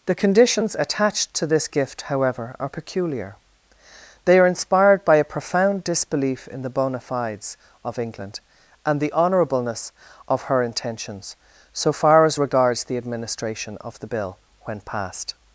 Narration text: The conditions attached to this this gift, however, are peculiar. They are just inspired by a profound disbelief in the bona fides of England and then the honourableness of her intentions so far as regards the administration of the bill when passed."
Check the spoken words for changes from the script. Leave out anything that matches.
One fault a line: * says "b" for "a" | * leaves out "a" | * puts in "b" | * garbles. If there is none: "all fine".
* leaves out "this"
* leaves out "just"
* leaves out "then"